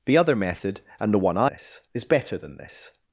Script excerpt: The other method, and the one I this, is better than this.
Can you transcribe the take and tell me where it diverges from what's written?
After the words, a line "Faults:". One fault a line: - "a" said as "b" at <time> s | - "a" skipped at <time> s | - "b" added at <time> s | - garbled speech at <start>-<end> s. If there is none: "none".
The other method, and the one I this, is better than this.
Faults:
none